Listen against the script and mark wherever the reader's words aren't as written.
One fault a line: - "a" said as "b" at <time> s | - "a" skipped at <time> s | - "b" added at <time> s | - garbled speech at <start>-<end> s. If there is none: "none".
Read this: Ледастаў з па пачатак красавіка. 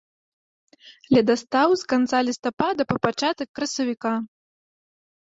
- "канца лістапада" added at 1.9 s